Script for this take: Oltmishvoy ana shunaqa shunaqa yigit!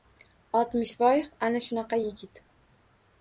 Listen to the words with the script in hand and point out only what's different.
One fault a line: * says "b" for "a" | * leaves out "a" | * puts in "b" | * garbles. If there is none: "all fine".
* leaves out "shunaqa"